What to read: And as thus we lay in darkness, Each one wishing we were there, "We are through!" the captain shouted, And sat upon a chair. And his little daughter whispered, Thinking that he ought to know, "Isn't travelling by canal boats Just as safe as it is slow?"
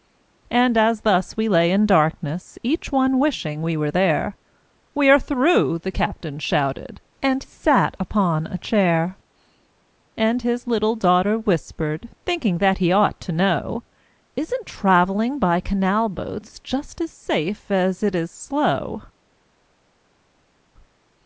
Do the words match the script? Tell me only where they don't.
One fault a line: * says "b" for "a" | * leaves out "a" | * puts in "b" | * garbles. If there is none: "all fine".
all fine